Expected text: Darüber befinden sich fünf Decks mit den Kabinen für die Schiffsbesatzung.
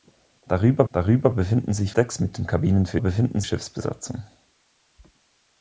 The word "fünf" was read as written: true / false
false